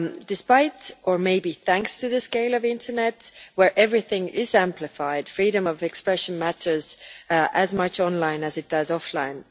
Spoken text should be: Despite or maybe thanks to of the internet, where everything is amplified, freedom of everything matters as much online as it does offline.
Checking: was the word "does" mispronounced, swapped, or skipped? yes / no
no